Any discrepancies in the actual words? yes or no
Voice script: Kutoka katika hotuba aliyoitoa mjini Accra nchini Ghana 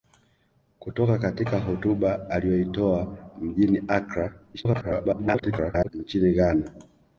yes